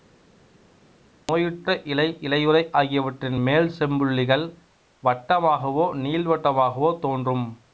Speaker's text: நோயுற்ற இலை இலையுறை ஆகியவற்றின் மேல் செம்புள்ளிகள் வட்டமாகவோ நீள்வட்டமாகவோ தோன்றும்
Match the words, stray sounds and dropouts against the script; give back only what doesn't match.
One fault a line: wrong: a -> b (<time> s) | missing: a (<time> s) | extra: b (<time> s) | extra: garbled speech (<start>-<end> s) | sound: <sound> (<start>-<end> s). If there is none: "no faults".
no faults